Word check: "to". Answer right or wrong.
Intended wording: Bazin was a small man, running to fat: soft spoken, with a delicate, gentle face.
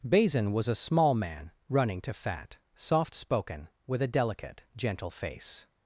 right